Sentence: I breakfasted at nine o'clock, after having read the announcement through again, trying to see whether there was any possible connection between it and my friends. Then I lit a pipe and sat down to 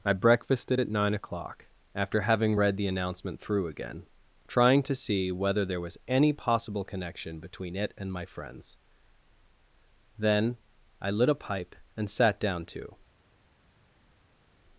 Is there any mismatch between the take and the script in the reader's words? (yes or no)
no